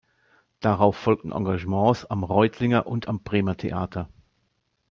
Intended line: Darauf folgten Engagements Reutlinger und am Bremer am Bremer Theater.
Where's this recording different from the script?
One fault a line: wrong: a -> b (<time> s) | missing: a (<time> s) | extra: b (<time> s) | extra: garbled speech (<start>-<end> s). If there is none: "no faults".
extra: am (2.0 s)
missing: am Bremer (3.6 s)